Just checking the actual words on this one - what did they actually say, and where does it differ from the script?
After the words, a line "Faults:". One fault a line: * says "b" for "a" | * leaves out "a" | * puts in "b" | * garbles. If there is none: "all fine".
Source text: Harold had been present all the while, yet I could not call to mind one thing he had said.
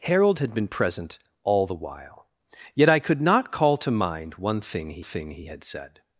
Harold had been present all the while, yet I could not call to mind one thing he thing he had said.
Faults:
* puts in "thing he"